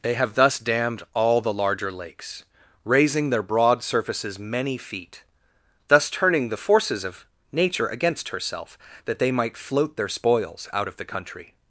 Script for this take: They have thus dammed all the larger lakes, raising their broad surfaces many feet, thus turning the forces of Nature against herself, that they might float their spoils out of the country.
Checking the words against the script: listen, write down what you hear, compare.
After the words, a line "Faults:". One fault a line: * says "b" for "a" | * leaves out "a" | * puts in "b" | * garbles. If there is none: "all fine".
They have thus dammed all the larger lakes, raising their broad surfaces many feet, thus turning the forces of Nature against herself, that they might float their spoils out of the country.
Faults:
all fine